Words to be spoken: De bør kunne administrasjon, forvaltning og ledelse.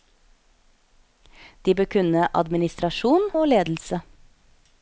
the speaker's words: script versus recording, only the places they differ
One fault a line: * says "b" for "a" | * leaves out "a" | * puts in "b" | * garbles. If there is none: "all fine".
* leaves out "forvaltning"